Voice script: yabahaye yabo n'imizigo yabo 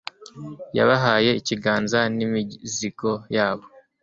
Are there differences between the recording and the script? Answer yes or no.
yes